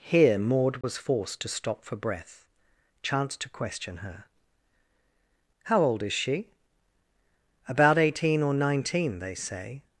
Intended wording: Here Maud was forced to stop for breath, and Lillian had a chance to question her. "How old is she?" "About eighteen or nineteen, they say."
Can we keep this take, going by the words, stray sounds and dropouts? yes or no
no